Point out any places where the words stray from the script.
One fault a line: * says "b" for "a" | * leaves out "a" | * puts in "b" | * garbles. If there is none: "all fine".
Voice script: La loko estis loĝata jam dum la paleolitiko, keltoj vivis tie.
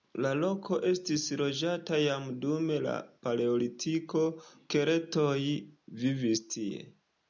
all fine